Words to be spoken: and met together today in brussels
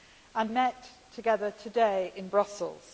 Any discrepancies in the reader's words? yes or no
no